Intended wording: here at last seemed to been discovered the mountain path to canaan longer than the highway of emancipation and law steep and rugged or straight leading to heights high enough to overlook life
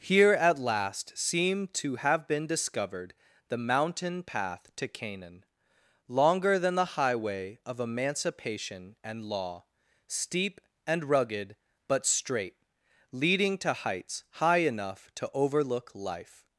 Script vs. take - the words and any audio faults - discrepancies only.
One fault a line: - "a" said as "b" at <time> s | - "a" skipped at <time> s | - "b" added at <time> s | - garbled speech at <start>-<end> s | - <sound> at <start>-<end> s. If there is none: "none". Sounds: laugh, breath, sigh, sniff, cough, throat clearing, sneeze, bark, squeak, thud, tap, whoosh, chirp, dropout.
- "have" added at 2.0 s
- "or" said as "but" at 11.9 s